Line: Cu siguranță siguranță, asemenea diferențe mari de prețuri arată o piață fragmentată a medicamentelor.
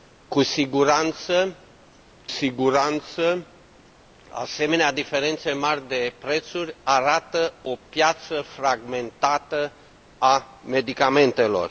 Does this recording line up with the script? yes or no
yes